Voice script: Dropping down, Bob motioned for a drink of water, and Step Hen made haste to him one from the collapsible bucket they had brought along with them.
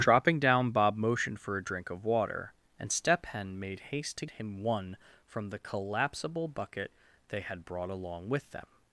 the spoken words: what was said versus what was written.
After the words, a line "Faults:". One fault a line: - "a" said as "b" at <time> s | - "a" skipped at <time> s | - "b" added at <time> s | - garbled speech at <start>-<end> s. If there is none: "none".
Dropping down, Bob motioned for a drink of water, and Step Hen made haste to him one from the collapsible bucket they had brought along with them.
Faults:
none